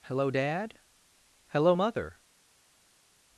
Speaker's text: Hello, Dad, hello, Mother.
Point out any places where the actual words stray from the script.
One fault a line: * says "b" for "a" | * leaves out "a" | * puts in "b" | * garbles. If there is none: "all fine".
all fine